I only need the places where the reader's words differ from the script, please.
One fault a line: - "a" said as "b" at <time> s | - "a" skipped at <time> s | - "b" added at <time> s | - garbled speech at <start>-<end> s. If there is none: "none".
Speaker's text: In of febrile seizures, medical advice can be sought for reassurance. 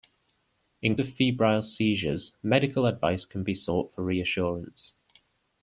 none